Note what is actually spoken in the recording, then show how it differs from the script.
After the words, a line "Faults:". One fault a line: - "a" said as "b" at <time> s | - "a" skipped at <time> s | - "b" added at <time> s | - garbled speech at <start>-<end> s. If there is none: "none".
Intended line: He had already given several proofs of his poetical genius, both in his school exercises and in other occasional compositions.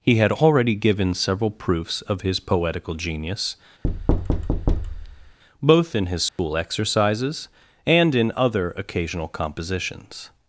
He had already given several proofs of his poetical genius, both in his school exercises and in other occasional compositions.
Faults:
none